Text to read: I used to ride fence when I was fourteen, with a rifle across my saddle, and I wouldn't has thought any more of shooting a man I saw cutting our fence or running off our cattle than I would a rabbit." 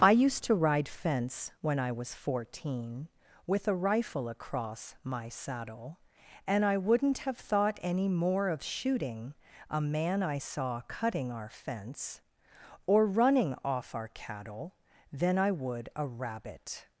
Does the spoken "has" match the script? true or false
false